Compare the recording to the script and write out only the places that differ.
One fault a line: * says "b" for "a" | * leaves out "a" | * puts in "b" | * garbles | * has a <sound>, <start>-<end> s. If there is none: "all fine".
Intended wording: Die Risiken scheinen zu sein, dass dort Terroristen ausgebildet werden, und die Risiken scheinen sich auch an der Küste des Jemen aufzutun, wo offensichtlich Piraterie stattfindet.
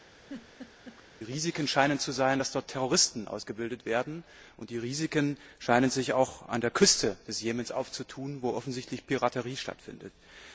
* has a laugh, 0.1-1.0 s